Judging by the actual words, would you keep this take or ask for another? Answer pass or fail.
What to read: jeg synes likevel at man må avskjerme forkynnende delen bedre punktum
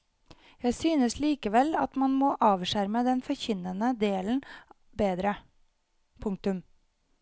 fail